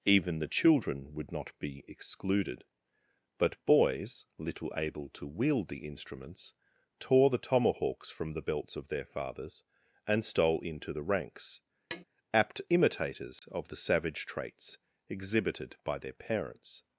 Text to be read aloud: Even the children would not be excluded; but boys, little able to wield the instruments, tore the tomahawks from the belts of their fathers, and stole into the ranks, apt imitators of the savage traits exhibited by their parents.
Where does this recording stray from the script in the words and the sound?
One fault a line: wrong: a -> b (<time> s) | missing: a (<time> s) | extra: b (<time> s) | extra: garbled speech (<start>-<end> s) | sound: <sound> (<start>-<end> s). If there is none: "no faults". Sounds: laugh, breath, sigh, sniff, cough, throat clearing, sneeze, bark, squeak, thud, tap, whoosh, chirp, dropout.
sound: tap (11.9-12.0 s)
sound: dropout (13.4-13.4 s)